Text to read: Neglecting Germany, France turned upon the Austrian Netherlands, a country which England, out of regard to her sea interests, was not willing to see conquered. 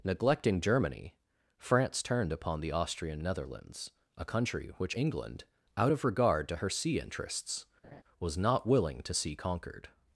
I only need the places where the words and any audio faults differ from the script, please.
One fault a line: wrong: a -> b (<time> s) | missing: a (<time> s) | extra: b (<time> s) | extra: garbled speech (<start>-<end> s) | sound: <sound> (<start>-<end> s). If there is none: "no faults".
sound: laugh (7.8-8.0 s)